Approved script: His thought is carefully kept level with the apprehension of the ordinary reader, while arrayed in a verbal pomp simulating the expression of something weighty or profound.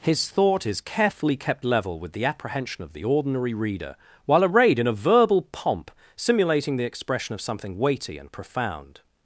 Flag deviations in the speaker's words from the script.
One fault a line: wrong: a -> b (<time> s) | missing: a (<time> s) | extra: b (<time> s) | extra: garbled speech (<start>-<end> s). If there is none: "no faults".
wrong: or -> and (8.2 s)